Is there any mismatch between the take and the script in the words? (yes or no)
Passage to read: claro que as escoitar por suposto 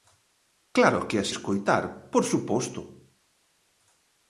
no